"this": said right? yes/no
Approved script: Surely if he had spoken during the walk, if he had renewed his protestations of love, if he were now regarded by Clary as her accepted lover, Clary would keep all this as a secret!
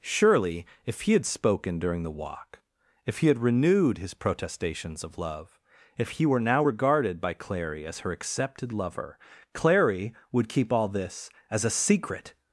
yes